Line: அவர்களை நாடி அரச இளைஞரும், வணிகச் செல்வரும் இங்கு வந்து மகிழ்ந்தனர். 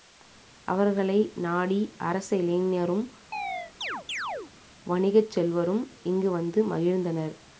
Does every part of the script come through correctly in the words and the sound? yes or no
no